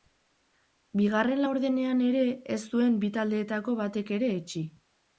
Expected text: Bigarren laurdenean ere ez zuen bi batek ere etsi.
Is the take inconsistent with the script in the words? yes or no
yes